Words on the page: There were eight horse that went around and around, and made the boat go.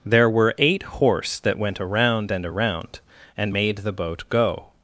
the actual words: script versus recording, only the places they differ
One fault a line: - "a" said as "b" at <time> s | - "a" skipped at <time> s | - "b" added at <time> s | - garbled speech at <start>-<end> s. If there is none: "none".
none